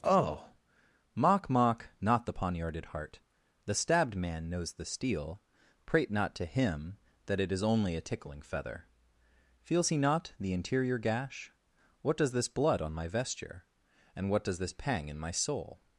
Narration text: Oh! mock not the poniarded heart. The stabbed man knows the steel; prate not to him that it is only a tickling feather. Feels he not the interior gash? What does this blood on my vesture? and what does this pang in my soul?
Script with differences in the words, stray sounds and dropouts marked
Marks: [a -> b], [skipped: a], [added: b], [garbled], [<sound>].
Oh! mock [added: mock] not the poniarded heart. The stabbed man knows the steel; prate not to him that it is only a tickling feather. Feels he not the interior gash? What does this blood on my vesture? and what does this pang in my soul?